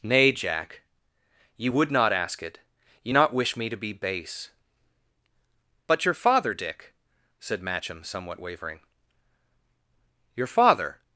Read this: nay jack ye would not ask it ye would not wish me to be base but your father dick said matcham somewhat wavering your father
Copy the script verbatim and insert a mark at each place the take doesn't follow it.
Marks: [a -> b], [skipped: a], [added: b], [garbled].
nay jack ye would not ask it ye [skipped: would] not wish me to be base but your father dick said matcham somewhat wavering your father